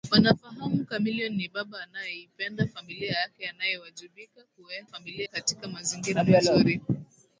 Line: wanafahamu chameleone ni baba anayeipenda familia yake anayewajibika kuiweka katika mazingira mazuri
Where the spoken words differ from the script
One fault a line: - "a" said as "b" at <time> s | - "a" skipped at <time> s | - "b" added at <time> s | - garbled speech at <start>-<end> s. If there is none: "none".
- "kuiweka" said as "familia" at 4.8 s